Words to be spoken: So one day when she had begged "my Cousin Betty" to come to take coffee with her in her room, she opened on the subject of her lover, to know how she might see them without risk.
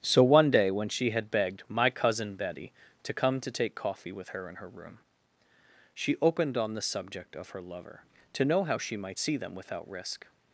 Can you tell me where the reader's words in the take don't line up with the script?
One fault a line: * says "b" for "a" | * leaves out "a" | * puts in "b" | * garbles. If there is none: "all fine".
all fine